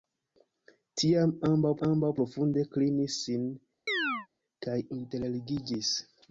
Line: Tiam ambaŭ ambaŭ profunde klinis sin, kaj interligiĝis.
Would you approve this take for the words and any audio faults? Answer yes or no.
no